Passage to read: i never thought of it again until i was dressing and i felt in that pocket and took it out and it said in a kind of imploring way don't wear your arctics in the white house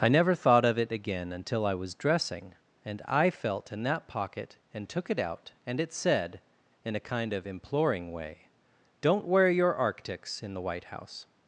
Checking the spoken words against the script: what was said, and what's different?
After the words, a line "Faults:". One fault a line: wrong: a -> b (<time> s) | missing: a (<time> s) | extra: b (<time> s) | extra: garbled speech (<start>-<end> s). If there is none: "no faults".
i never thought of it again until i was dressing and i felt in that pocket and took it out and it said in a kind of imploring way don't wear your arctics in the white house
Faults:
no faults